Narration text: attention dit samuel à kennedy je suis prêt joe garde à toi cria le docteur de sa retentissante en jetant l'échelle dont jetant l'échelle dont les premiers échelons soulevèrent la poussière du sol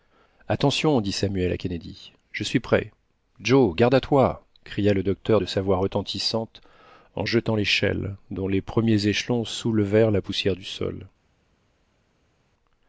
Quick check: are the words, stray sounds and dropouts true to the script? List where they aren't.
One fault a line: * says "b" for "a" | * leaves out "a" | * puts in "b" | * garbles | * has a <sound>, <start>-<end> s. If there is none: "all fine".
* puts in "voix"
* leaves out "jetant l'échelle dont"